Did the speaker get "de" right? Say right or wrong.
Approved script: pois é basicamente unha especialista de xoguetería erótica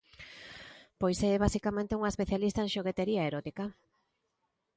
wrong